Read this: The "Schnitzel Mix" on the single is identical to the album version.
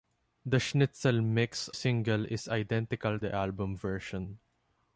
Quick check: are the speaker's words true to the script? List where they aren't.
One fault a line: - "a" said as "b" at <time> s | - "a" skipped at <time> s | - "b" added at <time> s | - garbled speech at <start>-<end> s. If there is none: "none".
- "on the" skipped at 1.7 s
- "to" skipped at 3.2 s